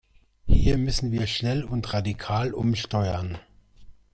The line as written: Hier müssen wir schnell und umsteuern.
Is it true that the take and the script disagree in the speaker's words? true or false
true